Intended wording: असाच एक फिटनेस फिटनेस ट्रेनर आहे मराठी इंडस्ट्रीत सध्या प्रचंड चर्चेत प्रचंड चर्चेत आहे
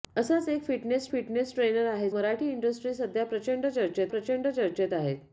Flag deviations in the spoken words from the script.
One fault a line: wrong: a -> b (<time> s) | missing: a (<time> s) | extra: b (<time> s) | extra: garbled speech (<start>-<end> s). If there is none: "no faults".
no faults